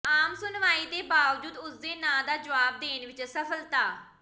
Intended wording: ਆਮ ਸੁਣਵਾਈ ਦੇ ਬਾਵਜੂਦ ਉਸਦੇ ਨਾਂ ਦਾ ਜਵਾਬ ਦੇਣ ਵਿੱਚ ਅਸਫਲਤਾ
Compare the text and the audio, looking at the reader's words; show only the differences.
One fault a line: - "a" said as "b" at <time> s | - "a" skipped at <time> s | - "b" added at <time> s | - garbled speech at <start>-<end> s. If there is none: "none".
none